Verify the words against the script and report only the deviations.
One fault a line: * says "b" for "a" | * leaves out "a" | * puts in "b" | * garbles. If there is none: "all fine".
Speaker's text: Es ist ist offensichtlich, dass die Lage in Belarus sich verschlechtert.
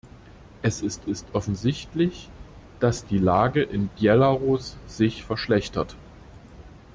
all fine